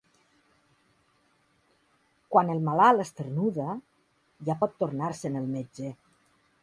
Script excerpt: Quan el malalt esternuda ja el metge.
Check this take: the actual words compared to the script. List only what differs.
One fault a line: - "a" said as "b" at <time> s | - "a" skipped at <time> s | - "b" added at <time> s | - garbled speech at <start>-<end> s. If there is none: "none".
- "pot tornar se'n" added at 4.6 s